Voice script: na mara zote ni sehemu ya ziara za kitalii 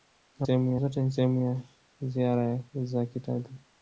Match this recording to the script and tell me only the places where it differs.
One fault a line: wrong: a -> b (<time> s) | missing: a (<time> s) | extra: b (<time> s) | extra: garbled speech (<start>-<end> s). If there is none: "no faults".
wrong: mara -> sehemu (0.4 s)